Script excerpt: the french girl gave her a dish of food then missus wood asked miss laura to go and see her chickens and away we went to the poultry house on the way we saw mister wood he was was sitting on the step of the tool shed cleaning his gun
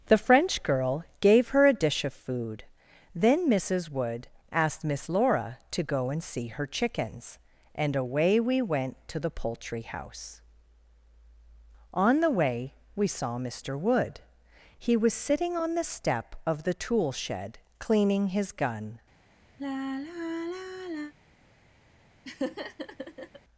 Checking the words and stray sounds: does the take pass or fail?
fail